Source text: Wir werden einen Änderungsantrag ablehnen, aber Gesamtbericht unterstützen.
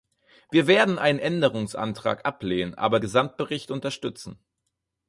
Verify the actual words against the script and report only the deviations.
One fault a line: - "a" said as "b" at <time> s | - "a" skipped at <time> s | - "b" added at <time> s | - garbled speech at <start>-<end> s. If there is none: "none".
none